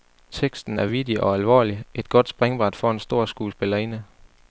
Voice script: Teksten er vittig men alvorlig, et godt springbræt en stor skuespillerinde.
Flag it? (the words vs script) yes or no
yes